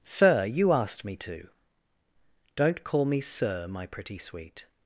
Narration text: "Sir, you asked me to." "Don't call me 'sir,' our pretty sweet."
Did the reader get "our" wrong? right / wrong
wrong